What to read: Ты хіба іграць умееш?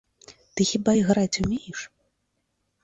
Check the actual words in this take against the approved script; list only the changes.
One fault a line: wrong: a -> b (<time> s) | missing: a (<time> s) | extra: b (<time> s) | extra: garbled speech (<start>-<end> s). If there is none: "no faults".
no faults